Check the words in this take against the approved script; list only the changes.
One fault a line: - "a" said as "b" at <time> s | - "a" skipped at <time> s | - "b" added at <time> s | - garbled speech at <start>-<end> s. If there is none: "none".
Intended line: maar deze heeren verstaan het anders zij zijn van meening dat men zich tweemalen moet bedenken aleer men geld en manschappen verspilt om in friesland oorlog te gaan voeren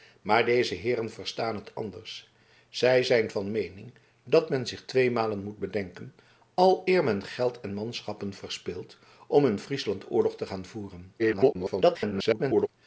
- garbled speech at 11.2-12.7 s